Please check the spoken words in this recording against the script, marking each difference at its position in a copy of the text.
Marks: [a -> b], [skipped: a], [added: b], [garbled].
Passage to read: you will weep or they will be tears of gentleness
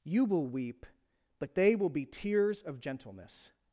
you will weep [or -> but] they will be tears of gentleness